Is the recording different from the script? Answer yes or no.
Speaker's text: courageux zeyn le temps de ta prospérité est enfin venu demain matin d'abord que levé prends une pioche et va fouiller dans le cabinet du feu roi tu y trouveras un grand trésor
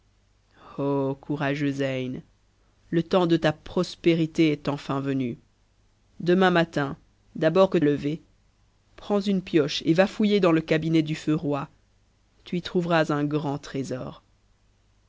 no